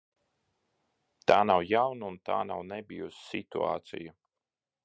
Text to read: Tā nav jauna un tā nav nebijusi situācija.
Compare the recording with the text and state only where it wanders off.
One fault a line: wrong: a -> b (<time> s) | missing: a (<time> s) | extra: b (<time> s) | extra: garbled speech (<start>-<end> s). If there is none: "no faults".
no faults